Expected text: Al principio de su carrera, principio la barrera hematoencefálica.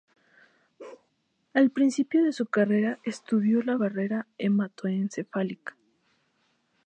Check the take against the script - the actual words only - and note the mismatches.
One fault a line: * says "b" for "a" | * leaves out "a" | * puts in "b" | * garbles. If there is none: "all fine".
* says "estudió" for "principio"